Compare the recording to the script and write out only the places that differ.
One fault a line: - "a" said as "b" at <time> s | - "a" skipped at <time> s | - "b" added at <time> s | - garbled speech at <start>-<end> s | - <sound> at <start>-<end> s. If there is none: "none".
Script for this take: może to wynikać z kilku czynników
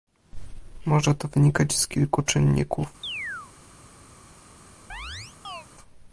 - chirp at 3.0-3.5 s
- chirp at 4.9-5.7 s